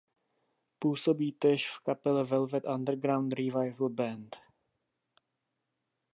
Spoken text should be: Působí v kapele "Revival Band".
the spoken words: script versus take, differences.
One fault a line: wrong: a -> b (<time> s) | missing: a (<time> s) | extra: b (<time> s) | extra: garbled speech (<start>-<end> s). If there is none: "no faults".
extra: též (1.3 s)
extra: Velvet Underground (2.2 s)